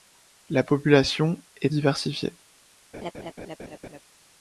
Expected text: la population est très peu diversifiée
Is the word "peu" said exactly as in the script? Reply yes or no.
no